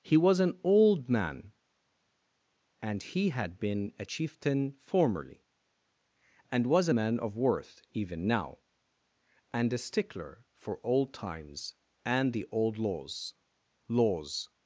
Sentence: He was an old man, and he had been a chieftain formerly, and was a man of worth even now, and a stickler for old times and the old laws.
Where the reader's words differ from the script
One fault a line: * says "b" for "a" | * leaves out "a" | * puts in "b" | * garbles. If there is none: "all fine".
* puts in "laws"